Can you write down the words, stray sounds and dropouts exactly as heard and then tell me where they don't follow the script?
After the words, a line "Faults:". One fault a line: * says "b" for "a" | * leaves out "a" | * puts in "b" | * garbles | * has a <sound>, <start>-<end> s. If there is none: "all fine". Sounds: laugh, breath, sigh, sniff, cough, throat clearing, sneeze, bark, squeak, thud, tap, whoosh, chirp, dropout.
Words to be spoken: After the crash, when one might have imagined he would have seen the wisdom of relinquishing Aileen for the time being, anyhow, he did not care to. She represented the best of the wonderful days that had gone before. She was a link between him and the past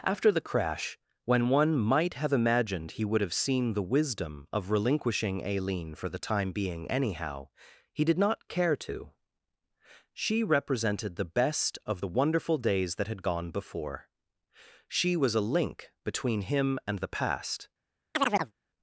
After the crash, when one might have imagined he would have seen the wisdom of relinquishing Aileen for the time being, anyhow, he did not care to. She represented the best of the wonderful days that had gone before. She was a link between him and the past
Faults:
* has a chirp, 18.1-18.5 s